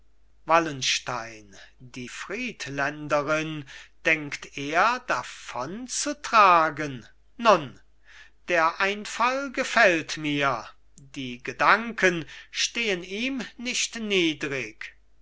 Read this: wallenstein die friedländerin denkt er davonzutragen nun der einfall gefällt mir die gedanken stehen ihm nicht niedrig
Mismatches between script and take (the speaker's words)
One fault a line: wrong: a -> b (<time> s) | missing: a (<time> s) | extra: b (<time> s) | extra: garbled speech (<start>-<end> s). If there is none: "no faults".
no faults